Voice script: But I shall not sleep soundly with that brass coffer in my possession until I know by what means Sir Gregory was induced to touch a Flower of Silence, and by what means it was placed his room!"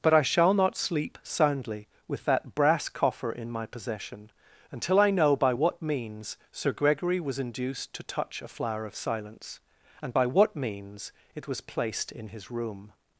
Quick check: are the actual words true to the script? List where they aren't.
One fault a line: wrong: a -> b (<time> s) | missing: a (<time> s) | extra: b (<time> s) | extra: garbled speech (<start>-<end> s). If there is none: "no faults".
extra: in (12.1 s)